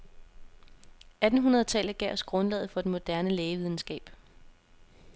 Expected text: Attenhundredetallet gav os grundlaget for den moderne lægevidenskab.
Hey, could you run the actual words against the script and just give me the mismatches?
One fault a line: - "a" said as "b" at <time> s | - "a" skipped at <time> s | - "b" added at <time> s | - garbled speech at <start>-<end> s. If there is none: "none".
none